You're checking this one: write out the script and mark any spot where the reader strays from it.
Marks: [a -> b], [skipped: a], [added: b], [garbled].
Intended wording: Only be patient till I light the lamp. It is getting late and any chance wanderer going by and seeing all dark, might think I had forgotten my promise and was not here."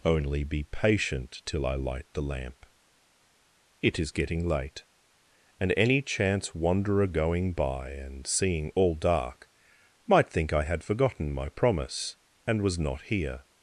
Only be patient till I light the lamp. It is getting late and any chance wanderer going by and seeing all dark, might think I had forgotten my promise and was not here."